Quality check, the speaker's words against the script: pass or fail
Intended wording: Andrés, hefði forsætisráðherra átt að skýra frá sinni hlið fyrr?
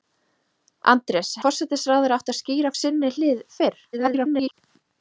fail